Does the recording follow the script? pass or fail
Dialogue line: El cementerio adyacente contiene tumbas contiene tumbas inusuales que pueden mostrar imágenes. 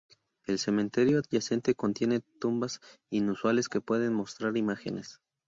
fail